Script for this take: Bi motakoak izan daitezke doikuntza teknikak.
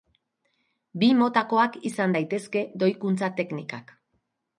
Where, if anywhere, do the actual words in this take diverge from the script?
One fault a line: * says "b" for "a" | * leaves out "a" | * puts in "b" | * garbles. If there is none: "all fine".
all fine